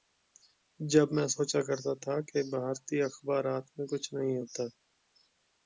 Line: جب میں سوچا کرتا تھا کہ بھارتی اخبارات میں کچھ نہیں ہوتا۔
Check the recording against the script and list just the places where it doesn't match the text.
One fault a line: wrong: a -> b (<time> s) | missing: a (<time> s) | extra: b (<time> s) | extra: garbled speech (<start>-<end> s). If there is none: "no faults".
no faults